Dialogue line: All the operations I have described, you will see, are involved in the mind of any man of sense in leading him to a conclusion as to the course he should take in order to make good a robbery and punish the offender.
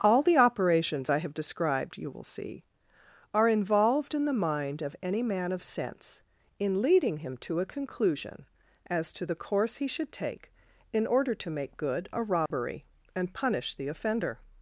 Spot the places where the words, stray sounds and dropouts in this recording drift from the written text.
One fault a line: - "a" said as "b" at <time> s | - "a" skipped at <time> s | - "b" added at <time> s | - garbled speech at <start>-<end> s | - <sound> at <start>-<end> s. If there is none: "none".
- dropout at 12.5-12.5 s